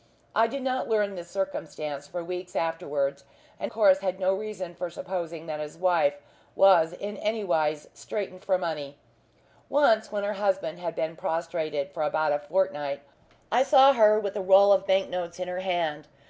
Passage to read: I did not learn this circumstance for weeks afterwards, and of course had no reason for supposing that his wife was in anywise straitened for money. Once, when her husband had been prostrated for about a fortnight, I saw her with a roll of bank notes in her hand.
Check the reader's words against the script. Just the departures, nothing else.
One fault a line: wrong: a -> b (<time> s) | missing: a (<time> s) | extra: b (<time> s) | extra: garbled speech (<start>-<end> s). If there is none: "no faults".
missing: of (3.7 s)